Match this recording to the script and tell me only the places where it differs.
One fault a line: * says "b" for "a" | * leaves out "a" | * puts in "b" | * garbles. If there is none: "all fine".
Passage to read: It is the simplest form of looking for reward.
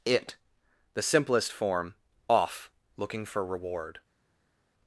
* leaves out "is"
* says "off" for "of"